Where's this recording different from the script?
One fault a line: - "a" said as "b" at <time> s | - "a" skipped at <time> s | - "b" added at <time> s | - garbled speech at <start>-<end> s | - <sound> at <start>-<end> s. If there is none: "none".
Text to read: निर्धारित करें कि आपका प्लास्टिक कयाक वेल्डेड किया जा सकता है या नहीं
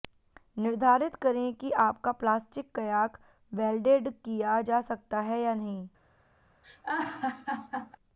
- laugh at 6.6-8.0 s